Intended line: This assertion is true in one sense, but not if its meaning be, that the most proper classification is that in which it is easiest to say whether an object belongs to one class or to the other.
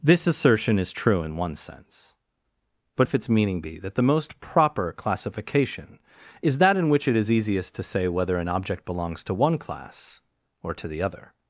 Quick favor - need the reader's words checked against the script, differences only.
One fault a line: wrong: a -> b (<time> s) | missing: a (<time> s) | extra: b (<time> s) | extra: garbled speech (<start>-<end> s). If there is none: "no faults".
missing: not (3.1 s)